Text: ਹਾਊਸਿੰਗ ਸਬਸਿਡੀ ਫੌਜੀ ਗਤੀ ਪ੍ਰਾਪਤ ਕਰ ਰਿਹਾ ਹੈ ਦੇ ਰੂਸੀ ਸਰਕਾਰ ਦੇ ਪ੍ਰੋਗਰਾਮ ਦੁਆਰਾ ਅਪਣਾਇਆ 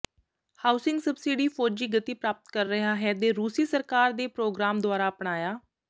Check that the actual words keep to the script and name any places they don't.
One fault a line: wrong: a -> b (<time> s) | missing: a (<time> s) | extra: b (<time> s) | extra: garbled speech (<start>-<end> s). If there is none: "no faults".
no faults